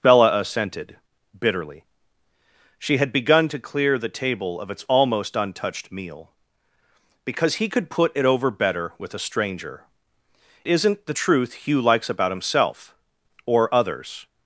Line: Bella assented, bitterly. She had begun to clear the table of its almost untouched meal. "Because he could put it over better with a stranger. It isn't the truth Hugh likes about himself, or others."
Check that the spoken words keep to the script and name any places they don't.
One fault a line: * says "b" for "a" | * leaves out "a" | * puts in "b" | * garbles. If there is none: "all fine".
* leaves out "It"